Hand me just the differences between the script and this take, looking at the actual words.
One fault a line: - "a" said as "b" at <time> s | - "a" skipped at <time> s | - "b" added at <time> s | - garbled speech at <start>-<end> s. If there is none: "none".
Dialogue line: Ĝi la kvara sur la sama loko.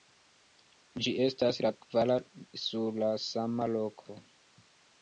- "estas" added at 1.3 s